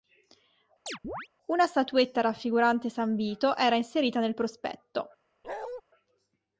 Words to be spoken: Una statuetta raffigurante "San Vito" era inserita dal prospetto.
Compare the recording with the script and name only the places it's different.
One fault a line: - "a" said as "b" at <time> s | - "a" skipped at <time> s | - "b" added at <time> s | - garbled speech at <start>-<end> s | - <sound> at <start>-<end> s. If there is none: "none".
- chirp at 0.9-1.3 s
- "dal" said as "nel" at 4.2 s
- bark at 5.4-5.8 s